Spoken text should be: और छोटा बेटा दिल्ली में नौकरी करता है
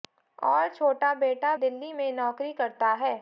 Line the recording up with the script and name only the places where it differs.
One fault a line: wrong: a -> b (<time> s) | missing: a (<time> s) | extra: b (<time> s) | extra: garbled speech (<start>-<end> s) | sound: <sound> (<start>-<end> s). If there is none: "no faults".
no faults